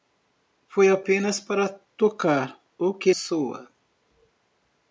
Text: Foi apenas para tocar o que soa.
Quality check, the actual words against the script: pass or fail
pass